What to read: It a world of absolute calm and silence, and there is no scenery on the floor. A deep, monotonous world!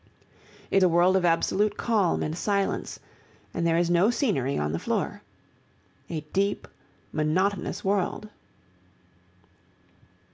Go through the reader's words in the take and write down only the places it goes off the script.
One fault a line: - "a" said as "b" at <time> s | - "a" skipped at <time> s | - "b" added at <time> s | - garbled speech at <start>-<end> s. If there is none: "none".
none